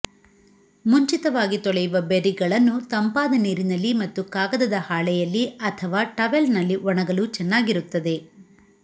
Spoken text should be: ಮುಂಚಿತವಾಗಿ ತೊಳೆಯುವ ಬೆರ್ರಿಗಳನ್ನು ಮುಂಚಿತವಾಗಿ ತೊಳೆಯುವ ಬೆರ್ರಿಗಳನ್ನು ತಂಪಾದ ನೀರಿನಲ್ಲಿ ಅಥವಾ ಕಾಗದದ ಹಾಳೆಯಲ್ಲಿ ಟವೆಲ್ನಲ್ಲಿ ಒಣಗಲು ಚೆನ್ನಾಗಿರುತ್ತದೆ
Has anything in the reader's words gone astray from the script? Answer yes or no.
yes